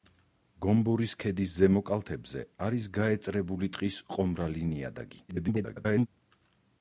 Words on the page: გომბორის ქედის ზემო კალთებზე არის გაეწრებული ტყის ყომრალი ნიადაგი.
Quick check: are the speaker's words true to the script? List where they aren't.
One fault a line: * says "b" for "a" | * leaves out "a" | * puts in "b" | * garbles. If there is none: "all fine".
* garbles